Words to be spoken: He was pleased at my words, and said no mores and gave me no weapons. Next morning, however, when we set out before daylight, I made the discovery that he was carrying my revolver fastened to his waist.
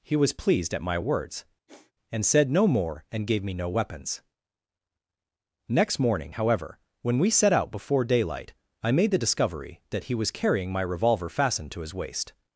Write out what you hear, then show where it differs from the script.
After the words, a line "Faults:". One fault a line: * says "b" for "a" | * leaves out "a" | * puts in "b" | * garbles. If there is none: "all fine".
He was pleased at my words, and said no more and gave me no weapons. Next morning, however, when we set out before daylight, I made the discovery that he was carrying my revolver fastened to his waist.
Faults:
* says "more" for "mores"